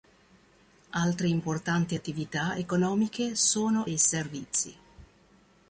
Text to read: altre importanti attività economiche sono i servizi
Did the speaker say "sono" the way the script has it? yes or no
yes